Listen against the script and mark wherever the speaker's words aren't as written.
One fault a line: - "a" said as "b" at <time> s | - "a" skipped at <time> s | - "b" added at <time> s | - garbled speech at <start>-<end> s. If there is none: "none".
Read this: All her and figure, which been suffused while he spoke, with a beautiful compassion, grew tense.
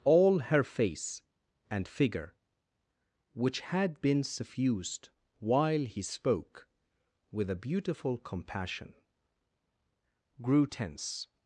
- "face" added at 0.6 s
- "had" added at 3.6 s